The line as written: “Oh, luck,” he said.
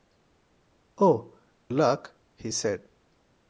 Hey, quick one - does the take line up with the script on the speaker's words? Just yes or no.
yes